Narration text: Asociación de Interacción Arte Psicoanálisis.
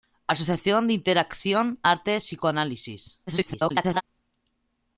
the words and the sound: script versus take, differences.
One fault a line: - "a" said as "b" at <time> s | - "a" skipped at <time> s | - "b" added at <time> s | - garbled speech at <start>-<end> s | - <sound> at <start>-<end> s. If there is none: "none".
- garbled speech at 3.3-4.0 s